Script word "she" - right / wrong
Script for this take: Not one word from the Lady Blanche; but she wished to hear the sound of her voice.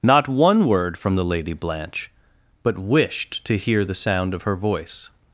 wrong